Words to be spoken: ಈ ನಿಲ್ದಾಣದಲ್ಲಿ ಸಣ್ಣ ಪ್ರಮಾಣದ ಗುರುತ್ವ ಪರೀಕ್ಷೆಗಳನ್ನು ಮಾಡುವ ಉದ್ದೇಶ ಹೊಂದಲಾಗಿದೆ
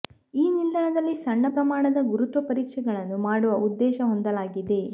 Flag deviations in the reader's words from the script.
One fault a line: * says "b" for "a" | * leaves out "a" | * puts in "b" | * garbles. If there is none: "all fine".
all fine